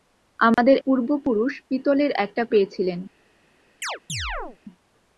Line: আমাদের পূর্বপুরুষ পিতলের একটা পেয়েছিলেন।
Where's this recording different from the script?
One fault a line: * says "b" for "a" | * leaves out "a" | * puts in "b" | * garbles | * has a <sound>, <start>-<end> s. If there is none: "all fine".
* has a dropout, 0.5-0.6 s
* has a chirp, 3.8-4.6 s